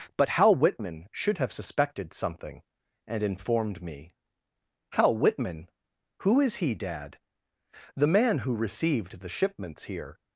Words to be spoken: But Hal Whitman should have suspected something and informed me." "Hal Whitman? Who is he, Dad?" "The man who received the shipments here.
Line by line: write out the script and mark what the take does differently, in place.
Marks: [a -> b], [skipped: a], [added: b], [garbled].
But Hal Whitman should have suspected something and informed me." "Hal Whitman? Who is he, Dad?" "The man who received the shipments here.